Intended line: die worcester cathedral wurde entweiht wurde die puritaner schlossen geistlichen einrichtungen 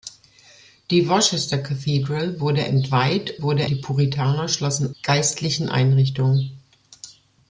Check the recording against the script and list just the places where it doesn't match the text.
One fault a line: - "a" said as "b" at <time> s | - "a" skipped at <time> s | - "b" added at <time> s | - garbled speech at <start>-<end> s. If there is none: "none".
none